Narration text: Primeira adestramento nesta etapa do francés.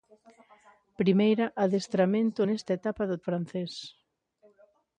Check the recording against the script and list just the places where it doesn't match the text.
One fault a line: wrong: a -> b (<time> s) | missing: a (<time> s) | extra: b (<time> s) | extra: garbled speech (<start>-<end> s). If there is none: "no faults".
no faults